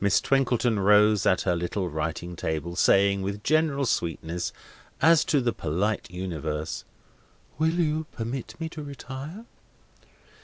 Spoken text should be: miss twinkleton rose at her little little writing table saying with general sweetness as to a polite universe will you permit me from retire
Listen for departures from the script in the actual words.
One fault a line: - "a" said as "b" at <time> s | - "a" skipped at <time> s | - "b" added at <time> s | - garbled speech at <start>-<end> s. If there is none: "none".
- "little" skipped at 1.9 s
- "a" said as "the" at 5.4 s
- "from" said as "to" at 8.7 s